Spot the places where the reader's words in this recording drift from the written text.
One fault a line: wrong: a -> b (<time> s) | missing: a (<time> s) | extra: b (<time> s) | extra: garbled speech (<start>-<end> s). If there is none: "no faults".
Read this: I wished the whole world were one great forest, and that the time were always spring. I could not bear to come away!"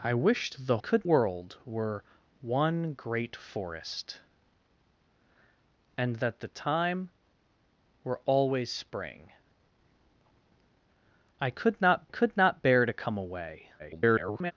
wrong: whole -> could (0.8 s)
extra: could not (12.1 s)
extra: garbled speech (13.8-14.5 s)